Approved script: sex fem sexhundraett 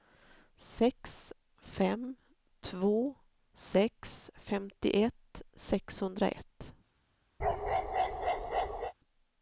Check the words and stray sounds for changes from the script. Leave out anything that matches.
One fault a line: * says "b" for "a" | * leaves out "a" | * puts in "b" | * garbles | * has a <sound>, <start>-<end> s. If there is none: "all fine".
* puts in "två sex femtioett"
* has a bark, 7.4-8.9 s